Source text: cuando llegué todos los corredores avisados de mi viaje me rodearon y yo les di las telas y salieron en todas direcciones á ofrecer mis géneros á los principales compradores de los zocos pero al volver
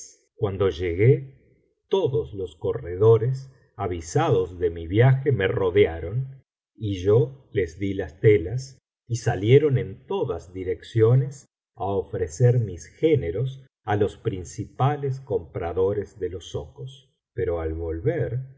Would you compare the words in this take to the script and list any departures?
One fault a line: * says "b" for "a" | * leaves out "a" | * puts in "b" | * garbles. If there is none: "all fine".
all fine